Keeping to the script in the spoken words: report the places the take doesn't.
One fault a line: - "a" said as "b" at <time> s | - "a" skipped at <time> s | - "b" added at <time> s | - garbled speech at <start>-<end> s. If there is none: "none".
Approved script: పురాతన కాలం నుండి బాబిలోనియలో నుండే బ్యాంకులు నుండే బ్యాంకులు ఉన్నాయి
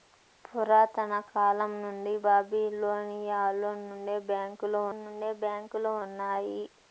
none